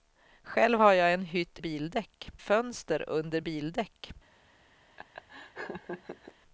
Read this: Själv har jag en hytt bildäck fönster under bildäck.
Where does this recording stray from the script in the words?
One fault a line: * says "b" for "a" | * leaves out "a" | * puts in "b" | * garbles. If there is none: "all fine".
all fine